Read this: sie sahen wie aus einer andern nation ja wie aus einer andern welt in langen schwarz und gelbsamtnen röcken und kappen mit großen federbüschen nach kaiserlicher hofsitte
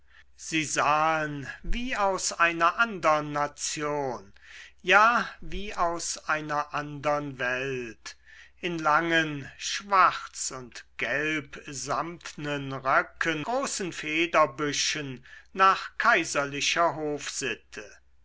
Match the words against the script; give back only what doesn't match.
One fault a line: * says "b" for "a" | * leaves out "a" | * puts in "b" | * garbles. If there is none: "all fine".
* leaves out "und kappen mit"